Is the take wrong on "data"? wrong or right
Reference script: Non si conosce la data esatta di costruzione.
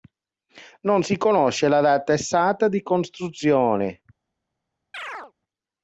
right